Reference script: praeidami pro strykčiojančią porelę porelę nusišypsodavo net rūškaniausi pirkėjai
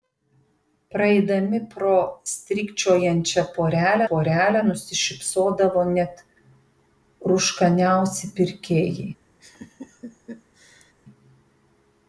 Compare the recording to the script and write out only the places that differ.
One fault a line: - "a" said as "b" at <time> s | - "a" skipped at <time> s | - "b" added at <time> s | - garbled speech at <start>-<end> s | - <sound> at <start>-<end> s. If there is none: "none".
- laugh at 9.4-10.9 s